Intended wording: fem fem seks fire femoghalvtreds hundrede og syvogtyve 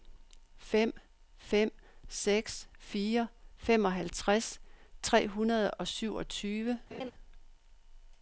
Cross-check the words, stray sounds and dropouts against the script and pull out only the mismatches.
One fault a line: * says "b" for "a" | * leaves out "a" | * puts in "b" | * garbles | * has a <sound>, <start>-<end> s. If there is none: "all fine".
* puts in "tre"
* has a laugh, 6.9-7.1 s